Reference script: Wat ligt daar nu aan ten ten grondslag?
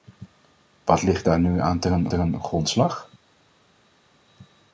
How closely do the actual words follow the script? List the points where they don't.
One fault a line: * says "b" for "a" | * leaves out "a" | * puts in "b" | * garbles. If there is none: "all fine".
all fine